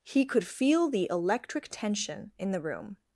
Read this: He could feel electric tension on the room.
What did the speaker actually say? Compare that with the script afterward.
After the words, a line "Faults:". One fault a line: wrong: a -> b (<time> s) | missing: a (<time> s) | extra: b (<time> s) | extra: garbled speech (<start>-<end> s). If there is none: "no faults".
He could feel the electric tension in the room.
Faults:
extra: the (0.9 s)
wrong: on -> in (2.4 s)